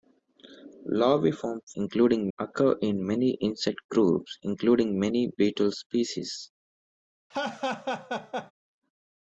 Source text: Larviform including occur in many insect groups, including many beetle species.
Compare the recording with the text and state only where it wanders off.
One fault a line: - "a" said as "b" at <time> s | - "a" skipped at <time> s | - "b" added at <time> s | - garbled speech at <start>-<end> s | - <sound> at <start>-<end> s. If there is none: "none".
- laugh at 7.3-8.5 s